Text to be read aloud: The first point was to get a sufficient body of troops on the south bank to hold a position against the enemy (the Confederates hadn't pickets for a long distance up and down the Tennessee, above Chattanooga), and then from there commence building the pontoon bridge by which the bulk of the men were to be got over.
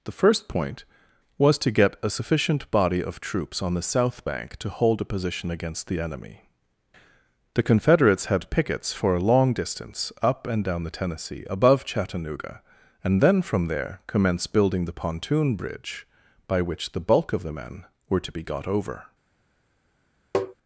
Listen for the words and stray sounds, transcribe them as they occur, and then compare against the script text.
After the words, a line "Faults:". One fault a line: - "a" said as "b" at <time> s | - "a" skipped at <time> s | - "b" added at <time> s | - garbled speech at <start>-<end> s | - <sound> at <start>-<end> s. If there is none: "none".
The first point was to get a sufficient body of troops on the south bank to hold a position against the enemy (the Confederates had pickets for a long distance up and down the Tennessee, above Chattanooga), and then from there commence building the pontoon bridge by which the bulk of the men were to be got over.
Faults:
- "hadn't" said as "had" at 8.3 s
- tap at 20.3-20.5 s